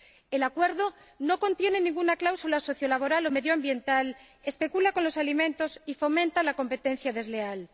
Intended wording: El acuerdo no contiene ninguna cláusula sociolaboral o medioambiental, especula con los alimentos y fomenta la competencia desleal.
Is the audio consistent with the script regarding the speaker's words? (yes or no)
yes